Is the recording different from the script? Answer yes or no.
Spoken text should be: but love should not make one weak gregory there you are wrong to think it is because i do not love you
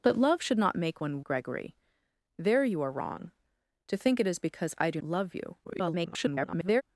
yes